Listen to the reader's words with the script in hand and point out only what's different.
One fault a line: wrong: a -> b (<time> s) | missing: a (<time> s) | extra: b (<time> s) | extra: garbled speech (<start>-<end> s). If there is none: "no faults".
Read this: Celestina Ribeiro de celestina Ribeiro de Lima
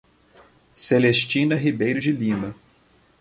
missing: celestina Ribeiro de (2.1 s)